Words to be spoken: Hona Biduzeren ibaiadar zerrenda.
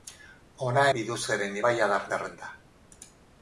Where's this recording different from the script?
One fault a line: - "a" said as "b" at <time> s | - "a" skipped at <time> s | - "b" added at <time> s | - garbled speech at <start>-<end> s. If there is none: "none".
none